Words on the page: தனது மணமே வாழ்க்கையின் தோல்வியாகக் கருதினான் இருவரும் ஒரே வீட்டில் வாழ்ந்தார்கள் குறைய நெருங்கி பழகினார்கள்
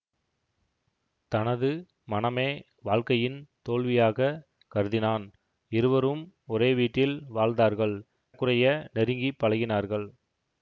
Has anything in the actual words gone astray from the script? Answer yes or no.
no